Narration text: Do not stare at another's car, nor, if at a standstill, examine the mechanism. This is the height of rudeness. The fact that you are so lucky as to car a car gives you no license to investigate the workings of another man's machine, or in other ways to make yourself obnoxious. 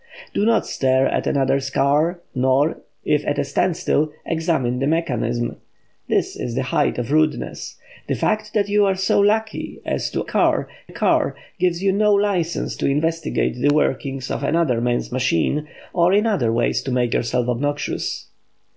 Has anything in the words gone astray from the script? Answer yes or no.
no